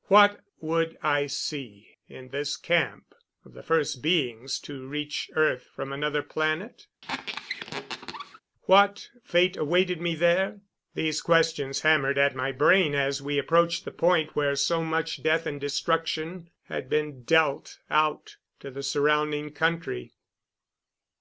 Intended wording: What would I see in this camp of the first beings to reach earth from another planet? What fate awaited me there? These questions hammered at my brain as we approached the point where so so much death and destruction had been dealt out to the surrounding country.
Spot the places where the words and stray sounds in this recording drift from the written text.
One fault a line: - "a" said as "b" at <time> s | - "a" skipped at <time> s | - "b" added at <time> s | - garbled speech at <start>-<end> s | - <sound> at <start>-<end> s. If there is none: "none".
- squeak at 7.0-8.4 s
- "so" skipped at 14.8 s